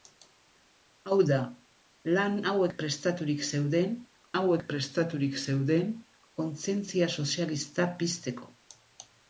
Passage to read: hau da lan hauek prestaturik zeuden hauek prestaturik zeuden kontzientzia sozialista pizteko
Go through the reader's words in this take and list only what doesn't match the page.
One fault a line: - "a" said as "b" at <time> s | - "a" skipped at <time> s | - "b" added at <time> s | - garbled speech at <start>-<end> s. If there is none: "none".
none